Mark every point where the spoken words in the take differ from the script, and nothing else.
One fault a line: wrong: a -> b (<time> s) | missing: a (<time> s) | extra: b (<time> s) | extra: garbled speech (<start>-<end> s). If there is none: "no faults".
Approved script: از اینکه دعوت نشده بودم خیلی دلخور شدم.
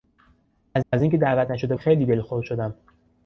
extra: از (0.9 s)
missing: بودم (1.8 s)